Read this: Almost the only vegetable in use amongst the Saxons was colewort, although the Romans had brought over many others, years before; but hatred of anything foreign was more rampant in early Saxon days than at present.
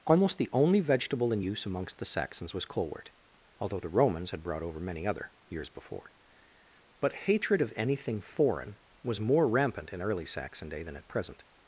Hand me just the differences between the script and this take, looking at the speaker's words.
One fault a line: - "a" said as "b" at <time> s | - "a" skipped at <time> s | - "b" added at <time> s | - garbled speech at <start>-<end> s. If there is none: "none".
- "others" said as "other" at 5.1 s
- "days" said as "day" at 10.7 s